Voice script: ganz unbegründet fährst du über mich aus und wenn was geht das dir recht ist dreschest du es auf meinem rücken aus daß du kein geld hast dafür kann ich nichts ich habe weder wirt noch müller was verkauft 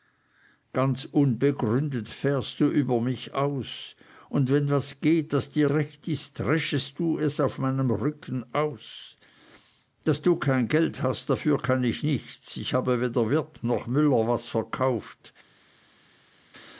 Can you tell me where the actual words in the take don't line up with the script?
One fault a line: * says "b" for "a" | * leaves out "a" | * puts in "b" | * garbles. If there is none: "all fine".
all fine